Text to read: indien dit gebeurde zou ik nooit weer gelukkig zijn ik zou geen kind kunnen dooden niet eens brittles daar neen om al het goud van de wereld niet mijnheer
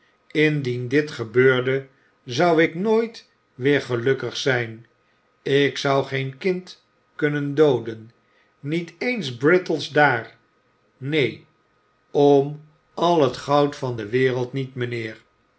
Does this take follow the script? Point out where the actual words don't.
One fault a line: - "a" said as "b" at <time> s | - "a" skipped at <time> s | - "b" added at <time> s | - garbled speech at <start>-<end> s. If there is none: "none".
none